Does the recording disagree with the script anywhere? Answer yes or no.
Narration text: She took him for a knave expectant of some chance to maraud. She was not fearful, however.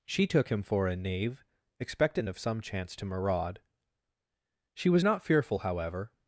no